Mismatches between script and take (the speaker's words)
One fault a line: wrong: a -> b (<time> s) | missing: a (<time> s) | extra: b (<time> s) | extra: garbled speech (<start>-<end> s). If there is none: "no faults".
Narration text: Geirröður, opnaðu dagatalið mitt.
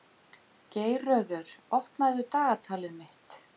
no faults